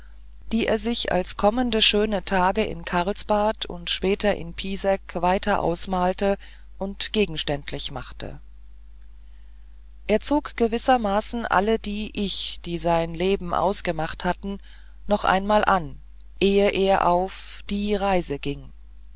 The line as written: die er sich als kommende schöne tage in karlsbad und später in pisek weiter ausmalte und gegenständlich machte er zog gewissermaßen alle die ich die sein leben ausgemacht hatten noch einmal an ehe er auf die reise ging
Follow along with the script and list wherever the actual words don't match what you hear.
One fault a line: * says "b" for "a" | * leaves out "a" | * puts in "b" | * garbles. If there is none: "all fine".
all fine